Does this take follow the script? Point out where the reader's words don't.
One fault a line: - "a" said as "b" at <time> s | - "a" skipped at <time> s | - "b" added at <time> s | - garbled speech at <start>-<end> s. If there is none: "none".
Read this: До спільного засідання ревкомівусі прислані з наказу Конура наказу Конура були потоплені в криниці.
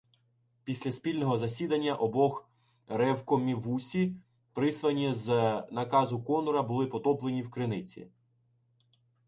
- "До" said as "Після" at 0.6 s
- "обох" added at 1.9 s
- "наказу Конура" skipped at 6.6 s